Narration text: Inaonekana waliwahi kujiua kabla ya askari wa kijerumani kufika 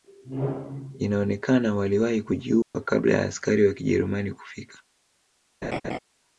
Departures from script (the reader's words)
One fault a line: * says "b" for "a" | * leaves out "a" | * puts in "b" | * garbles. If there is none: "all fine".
all fine